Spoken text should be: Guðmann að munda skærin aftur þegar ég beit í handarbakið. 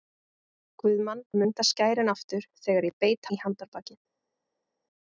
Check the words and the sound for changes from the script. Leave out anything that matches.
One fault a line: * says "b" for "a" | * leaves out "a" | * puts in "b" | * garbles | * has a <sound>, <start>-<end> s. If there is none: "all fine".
all fine